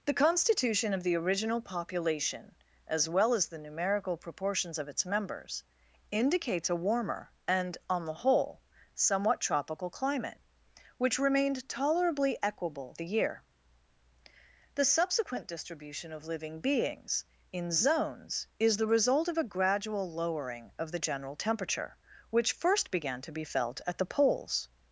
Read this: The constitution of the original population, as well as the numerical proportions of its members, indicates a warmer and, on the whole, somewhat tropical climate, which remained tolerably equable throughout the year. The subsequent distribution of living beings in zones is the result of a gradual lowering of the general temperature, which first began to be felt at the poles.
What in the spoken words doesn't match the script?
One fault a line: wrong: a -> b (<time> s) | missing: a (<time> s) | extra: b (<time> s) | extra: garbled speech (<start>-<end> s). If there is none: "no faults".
missing: throughout (12.9 s)